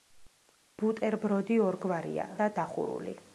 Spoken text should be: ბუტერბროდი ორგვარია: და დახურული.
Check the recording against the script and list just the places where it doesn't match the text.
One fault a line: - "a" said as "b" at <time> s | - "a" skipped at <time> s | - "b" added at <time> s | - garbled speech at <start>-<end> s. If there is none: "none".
none